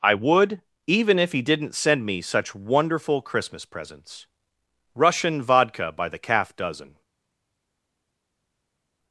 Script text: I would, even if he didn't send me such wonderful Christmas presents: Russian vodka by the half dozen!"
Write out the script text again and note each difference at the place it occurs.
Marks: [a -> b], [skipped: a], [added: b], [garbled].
I would, even if he didn't send me such wonderful Christmas presents: Russian vodka by the [half -> calf] dozen!"